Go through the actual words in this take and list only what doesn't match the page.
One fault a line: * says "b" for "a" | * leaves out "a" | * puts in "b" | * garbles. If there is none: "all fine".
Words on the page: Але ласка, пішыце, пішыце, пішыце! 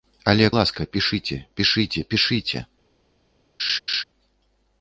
all fine